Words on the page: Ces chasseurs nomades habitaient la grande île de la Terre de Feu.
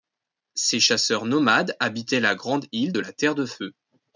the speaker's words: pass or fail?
pass